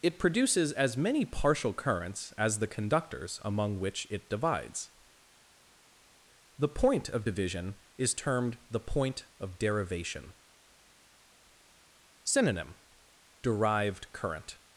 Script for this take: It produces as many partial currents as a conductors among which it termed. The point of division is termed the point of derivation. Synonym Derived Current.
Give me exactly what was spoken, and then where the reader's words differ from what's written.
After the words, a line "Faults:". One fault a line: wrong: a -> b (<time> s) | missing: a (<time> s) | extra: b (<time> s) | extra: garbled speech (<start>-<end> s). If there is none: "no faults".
It produces as many partial currents as the conductors among which it divides. The point of division is termed the point of derivation. Synonym Derived Current.
Faults:
wrong: a -> the (2.6 s)
wrong: termed -> divides (4.3 s)